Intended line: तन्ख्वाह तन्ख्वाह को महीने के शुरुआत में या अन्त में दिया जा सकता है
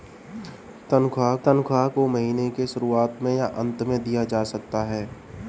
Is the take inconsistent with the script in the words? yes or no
no